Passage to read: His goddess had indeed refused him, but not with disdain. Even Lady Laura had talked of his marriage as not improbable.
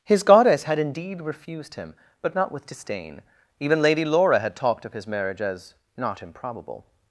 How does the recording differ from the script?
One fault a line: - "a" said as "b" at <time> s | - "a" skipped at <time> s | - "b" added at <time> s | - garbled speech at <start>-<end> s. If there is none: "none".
none